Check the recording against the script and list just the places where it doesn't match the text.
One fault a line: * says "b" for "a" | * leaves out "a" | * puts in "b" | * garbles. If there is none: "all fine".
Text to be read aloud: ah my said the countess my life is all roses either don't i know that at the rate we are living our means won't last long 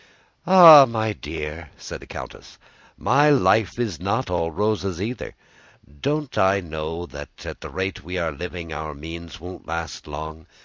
* puts in "dear"
* puts in "not"